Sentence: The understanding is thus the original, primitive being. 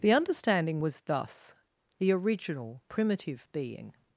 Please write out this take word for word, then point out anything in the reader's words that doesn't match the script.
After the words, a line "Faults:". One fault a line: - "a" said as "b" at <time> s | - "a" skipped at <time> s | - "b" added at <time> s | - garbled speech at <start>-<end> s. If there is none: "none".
The understanding was thus the original, primitive being.
Faults:
- "is" said as "was" at 0.8 s